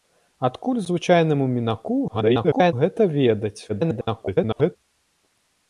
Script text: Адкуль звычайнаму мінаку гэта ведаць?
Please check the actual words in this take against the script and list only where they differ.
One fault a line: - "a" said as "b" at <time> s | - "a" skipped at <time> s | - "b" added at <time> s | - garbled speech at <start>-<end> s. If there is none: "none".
- garbled speech at 2.1-2.7 s
- garbled speech at 3.7-4.8 s